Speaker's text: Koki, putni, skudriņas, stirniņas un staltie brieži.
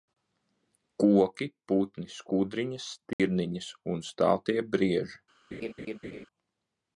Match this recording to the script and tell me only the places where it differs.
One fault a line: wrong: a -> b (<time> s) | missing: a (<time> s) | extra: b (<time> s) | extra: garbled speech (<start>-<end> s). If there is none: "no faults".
no faults